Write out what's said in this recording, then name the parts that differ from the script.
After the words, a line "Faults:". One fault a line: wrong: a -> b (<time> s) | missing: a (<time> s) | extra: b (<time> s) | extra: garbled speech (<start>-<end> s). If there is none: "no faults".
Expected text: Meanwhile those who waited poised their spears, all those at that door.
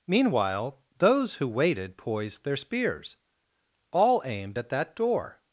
Meanwhile those who waited poised their spears, all aimed at that door.
Faults:
wrong: those -> aimed (4.2 s)